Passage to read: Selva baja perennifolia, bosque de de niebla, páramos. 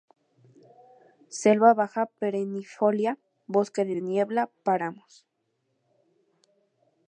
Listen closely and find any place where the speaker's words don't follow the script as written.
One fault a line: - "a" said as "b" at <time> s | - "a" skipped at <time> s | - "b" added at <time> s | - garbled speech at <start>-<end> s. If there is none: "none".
none